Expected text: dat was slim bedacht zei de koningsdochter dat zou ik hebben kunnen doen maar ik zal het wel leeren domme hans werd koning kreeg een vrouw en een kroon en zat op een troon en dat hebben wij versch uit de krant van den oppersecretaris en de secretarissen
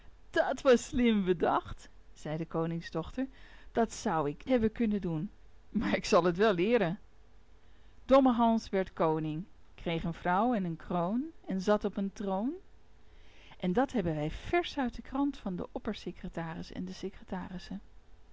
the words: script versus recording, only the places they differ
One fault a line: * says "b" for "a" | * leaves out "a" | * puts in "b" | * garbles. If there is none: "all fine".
all fine